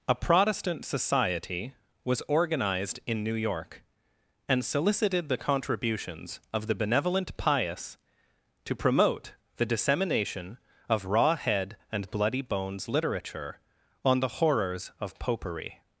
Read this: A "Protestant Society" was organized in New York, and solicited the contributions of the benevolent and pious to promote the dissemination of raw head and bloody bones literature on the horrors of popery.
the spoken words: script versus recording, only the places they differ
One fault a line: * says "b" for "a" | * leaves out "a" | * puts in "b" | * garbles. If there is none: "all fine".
* leaves out "and"